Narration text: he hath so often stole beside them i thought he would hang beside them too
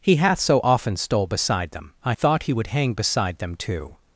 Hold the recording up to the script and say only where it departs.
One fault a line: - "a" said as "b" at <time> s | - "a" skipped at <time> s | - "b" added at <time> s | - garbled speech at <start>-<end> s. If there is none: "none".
none